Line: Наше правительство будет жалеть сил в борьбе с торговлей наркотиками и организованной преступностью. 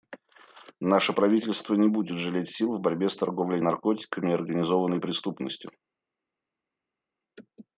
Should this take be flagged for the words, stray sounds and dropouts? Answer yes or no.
yes